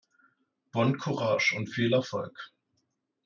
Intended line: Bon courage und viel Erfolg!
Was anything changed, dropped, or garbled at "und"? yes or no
no